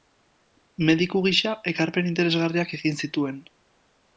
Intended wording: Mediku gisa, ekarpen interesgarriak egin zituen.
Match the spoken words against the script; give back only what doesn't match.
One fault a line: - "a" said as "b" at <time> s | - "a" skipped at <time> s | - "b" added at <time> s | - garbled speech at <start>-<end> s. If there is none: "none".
none